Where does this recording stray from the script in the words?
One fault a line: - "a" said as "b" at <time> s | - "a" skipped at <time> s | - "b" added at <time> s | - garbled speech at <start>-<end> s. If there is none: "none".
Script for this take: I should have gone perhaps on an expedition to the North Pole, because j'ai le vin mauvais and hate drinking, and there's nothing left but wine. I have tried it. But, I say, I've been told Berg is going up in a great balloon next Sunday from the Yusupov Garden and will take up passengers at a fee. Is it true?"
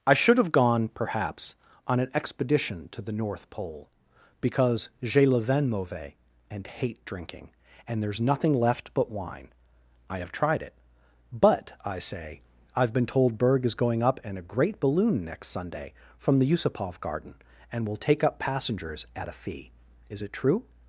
none